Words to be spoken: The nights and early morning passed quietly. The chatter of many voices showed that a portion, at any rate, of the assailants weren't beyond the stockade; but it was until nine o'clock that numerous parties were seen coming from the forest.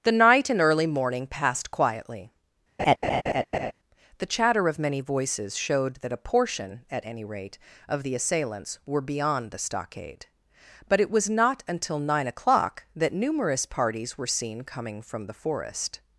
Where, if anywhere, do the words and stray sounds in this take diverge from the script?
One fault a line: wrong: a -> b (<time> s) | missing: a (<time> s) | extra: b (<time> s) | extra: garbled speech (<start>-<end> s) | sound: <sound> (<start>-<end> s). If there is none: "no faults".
wrong: nights -> night (0.2 s)
sound: laugh (2.8-3.7 s)
wrong: weren't -> were (8.8 s)
extra: not (11.3 s)